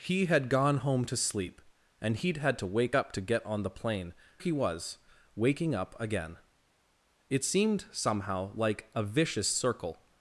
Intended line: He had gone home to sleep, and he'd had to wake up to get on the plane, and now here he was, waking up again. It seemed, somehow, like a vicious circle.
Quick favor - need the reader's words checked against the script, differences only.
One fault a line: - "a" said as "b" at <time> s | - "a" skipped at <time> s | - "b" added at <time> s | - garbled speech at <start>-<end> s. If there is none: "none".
- "and now here" skipped at 4.1 s